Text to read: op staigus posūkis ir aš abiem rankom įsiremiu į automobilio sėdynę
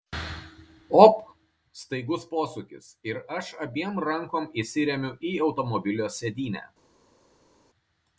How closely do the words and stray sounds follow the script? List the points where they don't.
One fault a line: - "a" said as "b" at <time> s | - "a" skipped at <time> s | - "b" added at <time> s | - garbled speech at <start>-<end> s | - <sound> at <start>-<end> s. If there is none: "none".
none